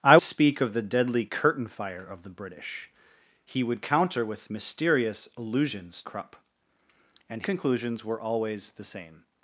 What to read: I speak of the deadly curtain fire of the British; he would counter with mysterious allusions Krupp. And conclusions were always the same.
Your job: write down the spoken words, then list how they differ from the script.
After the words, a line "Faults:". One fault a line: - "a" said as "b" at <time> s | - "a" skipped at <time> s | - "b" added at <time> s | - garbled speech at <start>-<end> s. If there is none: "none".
I speak of the deadly curtain fire of the British; he would counter with mysterious allusions Krupp. And conclusions were always the same.
Faults:
none